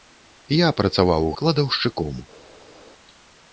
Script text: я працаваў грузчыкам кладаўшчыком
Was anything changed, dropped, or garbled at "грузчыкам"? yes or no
yes